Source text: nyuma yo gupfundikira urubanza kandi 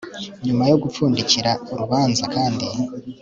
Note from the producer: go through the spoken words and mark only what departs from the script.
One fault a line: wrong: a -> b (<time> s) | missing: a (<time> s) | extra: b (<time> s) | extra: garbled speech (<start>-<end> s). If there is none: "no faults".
no faults